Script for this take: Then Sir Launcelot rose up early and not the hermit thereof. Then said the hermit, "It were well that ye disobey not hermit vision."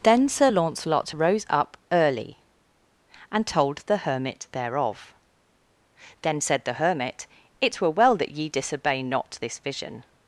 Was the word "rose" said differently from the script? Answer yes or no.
no